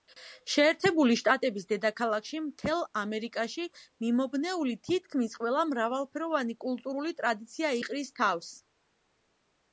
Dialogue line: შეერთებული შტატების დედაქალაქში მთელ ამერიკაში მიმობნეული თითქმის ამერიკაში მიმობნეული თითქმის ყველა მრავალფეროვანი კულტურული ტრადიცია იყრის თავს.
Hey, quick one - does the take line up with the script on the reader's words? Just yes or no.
no